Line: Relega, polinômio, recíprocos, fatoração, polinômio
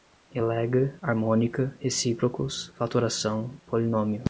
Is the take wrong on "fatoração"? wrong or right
right